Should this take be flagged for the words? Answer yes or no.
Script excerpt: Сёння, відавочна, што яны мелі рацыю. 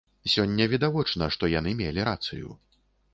no